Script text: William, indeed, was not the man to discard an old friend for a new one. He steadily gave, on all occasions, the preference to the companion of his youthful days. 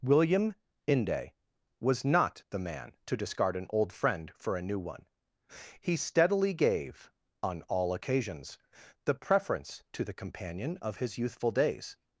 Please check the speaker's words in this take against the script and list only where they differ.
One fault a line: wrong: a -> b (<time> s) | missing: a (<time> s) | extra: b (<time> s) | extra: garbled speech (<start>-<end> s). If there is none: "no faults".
wrong: indeed -> inde (0.9 s)